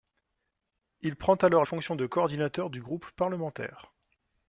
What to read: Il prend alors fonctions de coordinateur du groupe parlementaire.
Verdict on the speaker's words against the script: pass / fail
pass